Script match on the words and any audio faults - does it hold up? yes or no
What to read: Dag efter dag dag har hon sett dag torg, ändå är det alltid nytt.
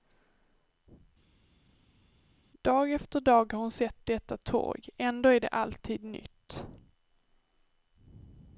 no